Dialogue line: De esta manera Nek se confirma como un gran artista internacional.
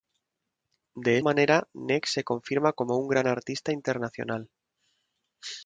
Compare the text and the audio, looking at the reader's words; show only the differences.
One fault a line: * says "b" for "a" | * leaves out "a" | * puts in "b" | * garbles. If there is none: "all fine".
* leaves out "esta"